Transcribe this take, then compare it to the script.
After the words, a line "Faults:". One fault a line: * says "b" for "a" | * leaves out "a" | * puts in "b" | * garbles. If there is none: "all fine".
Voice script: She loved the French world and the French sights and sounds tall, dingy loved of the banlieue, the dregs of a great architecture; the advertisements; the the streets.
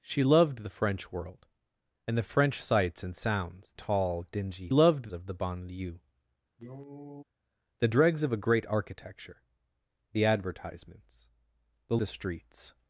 She loved the French world and the French sights and sounds tall, dingy loved of the banlieue, the dregs of a great architecture; the advertisements; the the streets.
Faults:
all fine